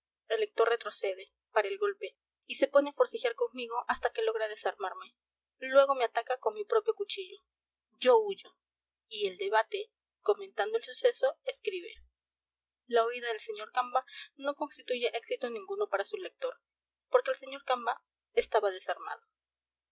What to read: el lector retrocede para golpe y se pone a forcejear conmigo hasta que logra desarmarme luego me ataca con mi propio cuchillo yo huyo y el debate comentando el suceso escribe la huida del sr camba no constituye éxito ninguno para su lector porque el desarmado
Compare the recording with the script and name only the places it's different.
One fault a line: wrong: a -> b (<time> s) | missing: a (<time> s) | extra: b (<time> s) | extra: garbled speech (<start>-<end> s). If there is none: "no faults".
extra: el (1.7 s)
extra: sr camba estaba (17.4 s)